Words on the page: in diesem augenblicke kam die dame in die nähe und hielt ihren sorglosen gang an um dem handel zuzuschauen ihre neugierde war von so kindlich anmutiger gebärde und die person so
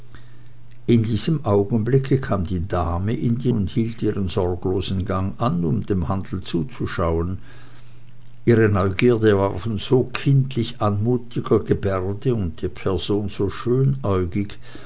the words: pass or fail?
fail